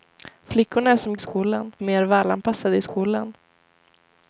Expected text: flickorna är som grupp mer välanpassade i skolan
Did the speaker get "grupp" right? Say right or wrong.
wrong